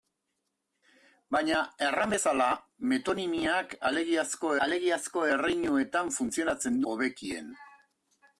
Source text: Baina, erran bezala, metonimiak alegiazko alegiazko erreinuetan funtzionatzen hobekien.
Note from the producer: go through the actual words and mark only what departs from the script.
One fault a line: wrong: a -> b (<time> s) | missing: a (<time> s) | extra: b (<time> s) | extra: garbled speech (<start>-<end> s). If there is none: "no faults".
no faults